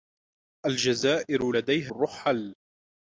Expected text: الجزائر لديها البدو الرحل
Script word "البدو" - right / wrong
wrong